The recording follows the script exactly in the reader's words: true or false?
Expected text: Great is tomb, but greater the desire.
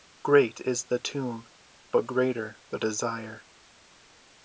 false